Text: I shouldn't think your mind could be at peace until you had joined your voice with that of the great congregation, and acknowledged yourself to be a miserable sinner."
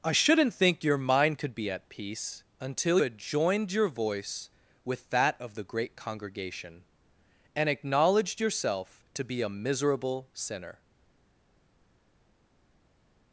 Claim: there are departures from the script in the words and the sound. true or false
true